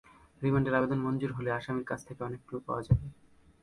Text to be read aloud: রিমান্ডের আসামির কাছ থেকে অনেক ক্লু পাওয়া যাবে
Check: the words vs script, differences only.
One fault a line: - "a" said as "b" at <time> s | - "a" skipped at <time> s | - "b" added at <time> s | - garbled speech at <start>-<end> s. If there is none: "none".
- "আবেদন মঞ্জুর হলে" added at 0.8 s